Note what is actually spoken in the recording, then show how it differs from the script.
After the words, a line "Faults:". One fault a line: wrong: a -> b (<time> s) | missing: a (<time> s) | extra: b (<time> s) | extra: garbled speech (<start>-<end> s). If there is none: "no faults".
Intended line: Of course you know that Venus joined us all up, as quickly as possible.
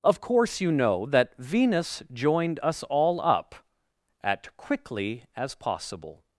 Of course you know that Venus joined us all up, at quickly as possible.
Faults:
wrong: as -> at (4.2 s)